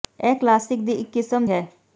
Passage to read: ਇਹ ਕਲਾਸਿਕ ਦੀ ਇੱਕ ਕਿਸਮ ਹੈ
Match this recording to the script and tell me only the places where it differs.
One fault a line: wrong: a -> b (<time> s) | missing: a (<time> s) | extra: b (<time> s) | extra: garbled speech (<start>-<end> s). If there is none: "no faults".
no faults